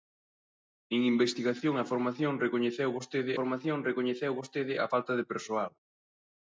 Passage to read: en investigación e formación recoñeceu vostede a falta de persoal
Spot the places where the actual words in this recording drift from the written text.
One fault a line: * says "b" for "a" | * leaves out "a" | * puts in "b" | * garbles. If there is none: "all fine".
* puts in "formación recoñeceu vostede"